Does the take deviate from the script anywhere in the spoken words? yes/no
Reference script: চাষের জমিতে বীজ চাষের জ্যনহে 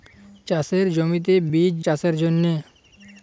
no